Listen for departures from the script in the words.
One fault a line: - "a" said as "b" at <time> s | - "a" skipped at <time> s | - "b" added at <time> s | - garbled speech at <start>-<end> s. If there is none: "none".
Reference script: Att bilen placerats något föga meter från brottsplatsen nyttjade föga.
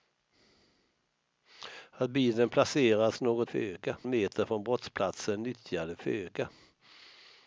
none